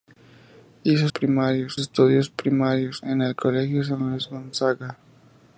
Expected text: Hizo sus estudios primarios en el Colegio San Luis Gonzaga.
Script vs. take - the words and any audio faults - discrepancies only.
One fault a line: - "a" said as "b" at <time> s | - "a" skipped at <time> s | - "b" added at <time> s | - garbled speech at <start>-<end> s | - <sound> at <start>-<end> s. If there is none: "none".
- "sus" said as "primarios" at 1.0 s